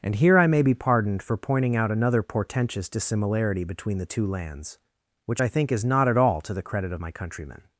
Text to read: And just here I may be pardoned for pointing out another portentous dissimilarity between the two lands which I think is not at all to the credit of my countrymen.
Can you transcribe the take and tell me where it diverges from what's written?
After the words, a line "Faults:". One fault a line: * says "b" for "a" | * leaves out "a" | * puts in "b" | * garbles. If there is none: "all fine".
And here I may be pardoned for pointing out another portentous dissimilarity between the two lands which I think is not at all to the credit of my countrymen.
Faults:
* leaves out "just"